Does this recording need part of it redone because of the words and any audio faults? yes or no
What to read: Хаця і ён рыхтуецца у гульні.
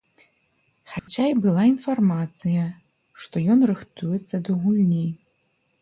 yes